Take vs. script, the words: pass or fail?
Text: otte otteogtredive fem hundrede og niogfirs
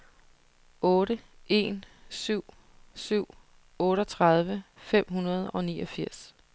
fail